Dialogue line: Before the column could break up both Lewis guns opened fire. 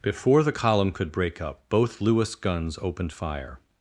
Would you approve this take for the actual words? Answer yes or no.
yes